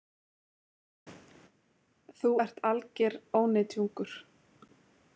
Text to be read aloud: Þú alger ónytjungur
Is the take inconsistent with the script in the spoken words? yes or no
yes